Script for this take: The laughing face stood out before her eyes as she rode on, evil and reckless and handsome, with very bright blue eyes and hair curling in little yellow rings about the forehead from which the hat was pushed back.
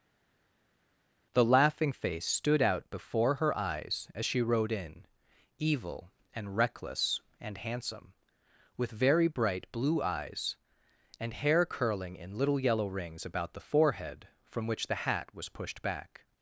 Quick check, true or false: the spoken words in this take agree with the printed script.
false